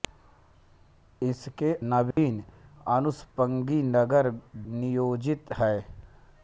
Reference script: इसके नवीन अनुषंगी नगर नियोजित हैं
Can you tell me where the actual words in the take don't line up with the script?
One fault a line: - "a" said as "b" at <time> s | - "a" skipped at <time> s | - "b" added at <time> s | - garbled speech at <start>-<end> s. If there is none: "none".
none